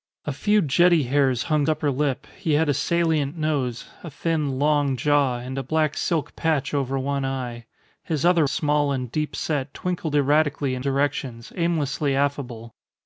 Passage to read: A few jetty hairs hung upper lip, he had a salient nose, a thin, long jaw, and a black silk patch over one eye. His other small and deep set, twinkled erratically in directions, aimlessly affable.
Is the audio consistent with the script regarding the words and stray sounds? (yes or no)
yes